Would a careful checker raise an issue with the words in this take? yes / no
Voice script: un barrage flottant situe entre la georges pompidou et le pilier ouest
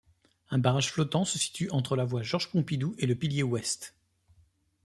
yes